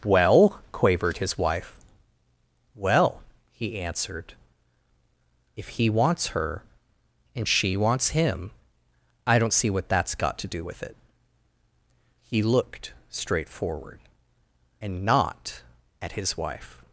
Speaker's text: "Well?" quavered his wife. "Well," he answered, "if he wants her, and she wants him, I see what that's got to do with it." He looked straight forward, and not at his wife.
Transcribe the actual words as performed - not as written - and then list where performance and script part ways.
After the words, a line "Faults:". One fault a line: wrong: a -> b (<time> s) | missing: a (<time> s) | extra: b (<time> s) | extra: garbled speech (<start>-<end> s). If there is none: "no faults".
"Well?" quavered his wife. "Well," he answered, "if he wants her, and she wants him, I don't see what that's got to do with it." He looked straight forward, and not at his wife.
Faults:
extra: don't (9.4 s)